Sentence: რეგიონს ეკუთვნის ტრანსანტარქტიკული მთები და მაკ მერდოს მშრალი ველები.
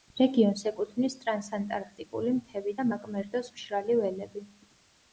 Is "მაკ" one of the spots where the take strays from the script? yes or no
no